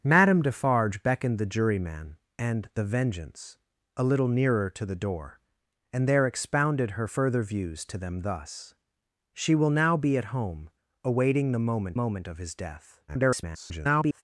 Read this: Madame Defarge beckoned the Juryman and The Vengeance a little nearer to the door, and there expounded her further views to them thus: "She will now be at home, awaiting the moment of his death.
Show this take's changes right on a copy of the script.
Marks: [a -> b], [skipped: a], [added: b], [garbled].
Madame Defarge beckoned the Juryman and The Vengeance a little nearer to the door, and there expounded her further views to them thus: "She will now be at home, awaiting the moment [added: moment] of his death. [garbled]